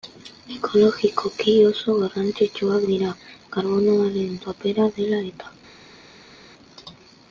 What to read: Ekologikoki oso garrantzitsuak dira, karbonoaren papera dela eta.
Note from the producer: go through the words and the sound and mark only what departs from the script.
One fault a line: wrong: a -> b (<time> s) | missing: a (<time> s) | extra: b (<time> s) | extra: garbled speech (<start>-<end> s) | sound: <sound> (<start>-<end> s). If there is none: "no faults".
no faults